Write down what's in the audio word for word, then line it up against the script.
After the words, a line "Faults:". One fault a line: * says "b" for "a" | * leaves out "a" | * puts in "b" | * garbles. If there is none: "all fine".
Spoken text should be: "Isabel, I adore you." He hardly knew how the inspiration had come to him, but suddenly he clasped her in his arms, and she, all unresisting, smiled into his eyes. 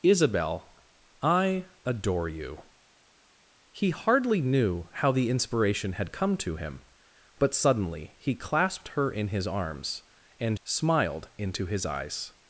"Isabel, I adore you." He hardly knew how the inspiration had come to him, but suddenly he clasped her in his arms, and smiled into his eyes.
Faults:
* leaves out "she all unresisting"